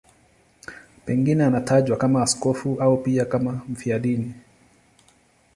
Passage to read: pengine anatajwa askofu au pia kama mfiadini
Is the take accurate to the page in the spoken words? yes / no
no